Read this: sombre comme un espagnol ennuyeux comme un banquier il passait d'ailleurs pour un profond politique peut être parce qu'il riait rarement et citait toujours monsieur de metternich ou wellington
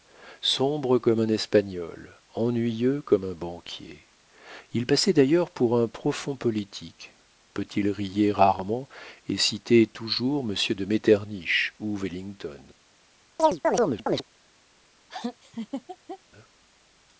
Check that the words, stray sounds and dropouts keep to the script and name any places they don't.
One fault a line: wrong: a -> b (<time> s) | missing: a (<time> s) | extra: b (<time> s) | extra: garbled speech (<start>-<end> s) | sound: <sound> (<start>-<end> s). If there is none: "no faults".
missing: être parce (7.7 s)
sound: chirp (13.4-14.2 s)
sound: laugh (15.1-16.2 s)